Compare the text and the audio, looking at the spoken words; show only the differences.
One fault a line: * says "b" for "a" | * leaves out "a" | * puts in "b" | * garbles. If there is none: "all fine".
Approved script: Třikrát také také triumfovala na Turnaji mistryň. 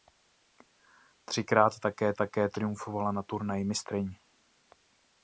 all fine